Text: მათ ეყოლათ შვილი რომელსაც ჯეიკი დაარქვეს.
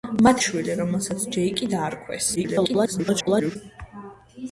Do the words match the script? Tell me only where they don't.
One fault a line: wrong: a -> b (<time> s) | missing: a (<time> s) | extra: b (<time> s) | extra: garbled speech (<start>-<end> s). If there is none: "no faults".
missing: ეყოლათ (0.4 s)
extra: garbled speech (2.4-3.6 s)